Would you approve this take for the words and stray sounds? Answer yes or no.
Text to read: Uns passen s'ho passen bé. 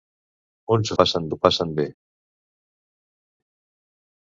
yes